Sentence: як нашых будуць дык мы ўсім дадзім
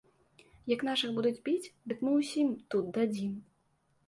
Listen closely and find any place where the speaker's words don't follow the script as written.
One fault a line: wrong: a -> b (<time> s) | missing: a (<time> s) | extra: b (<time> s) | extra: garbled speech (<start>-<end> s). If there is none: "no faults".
extra: біць (1.5 s)
extra: тут (2.7 s)